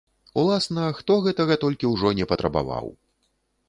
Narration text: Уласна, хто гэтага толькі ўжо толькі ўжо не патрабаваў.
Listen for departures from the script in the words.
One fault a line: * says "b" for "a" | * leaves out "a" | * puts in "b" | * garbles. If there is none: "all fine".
* leaves out "толькі ўжо"